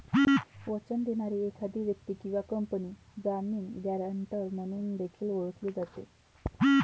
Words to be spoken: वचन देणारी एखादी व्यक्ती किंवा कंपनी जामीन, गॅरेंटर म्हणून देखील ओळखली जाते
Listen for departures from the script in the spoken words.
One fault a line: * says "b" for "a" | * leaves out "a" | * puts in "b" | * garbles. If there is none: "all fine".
all fine